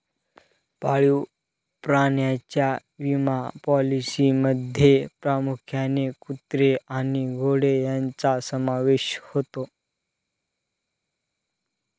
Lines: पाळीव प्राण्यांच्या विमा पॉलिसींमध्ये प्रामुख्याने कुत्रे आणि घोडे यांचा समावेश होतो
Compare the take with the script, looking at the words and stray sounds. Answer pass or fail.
pass